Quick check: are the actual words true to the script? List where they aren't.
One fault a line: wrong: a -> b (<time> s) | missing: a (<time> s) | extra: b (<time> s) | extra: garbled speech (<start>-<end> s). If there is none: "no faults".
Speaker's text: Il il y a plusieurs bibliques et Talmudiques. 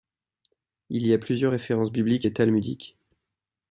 missing: il (1.1 s)
extra: références (1.5 s)